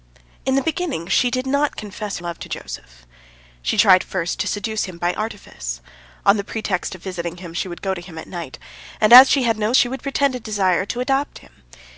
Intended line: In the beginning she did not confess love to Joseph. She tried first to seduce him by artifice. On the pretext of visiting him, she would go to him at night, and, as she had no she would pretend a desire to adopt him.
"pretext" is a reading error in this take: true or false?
false